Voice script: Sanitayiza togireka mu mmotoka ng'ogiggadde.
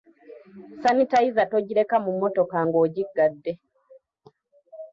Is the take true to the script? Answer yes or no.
yes